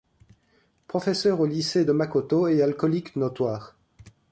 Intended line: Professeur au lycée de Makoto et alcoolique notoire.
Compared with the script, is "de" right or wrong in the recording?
right